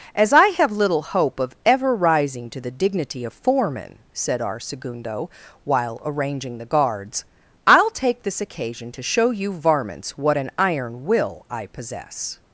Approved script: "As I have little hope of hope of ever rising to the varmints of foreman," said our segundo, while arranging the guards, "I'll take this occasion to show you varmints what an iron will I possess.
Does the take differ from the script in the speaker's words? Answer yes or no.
yes